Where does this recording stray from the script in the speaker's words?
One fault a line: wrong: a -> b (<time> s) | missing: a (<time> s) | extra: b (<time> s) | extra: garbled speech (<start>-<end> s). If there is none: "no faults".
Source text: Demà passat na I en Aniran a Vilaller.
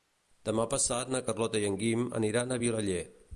extra: Carlota (1.3 s)
extra: Guim (1.8 s)